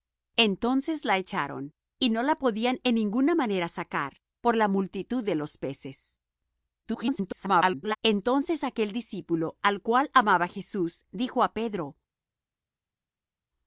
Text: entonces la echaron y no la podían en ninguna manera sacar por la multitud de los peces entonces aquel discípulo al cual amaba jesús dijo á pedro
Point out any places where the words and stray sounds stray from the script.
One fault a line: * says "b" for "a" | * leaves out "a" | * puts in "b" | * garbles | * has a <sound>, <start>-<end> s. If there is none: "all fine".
* garbles